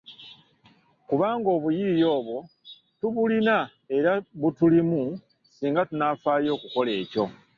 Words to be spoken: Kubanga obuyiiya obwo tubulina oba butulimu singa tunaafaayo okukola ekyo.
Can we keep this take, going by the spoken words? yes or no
no